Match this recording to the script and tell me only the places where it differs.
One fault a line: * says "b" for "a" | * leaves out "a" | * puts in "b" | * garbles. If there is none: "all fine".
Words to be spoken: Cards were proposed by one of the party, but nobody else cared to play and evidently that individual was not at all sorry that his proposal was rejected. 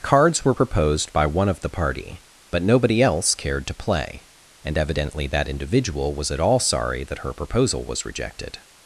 * leaves out "not"
* says "her" for "his"